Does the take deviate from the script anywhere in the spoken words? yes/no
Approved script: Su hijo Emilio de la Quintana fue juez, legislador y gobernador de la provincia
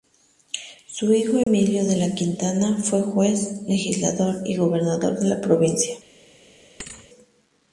no